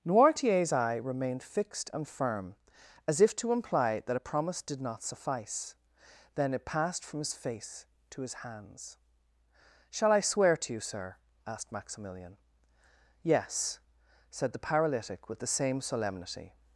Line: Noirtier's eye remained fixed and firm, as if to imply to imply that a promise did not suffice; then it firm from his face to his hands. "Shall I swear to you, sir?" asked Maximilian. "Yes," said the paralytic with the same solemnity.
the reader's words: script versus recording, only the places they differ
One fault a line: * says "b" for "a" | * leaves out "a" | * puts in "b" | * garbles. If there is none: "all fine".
* leaves out "to imply"
* says "passed" for "firm"